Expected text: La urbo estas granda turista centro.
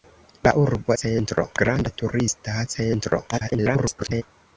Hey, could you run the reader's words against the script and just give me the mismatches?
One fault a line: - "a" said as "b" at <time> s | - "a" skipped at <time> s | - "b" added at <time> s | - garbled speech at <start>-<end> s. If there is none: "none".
- "estas" said as "centro" at 1.0 s
- garbled speech at 3.3-4.2 s